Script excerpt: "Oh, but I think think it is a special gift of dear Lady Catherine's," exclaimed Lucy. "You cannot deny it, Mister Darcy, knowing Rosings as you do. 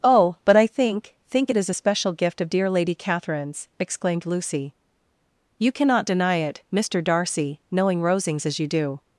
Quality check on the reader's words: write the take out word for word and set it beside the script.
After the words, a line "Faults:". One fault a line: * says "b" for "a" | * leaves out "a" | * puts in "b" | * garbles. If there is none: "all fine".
"Oh, but I think think it is a special gift of dear Lady Catherine's," exclaimed Lucy. "You cannot deny it, Mister Darcy, knowing Rosings as you do.
Faults:
all fine